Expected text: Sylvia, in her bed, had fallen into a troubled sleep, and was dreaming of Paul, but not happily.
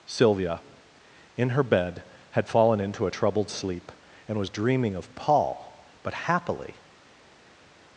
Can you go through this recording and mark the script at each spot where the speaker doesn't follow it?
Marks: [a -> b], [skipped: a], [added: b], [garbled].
Sylvia, in her bed, had fallen into a troubled sleep, and was dreaming of Paul, but [skipped: not] happily.